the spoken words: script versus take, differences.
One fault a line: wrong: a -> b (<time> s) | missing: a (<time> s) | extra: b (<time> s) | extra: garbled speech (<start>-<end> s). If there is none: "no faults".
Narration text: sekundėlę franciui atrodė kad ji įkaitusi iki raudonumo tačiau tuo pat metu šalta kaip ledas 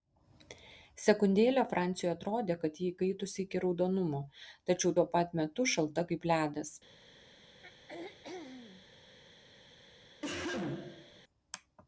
no faults